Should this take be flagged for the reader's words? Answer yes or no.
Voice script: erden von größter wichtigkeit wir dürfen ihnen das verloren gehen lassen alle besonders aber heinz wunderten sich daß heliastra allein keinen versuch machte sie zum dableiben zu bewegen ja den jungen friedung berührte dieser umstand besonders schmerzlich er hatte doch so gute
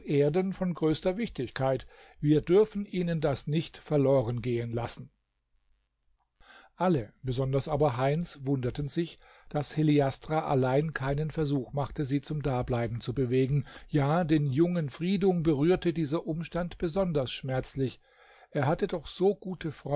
yes